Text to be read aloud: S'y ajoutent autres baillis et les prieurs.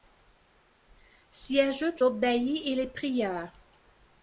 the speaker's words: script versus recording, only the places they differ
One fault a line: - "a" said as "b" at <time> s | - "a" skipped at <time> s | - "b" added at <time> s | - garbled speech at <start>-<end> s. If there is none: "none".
none